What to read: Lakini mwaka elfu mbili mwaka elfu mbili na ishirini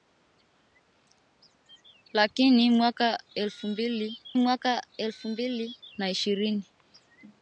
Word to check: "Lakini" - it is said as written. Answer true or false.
true